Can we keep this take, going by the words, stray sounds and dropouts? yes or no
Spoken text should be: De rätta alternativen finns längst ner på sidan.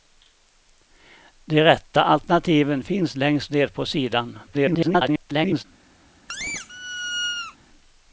no